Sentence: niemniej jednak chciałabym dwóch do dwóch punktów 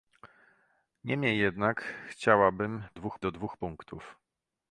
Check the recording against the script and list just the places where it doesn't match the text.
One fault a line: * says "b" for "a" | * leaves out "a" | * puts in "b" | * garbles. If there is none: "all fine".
all fine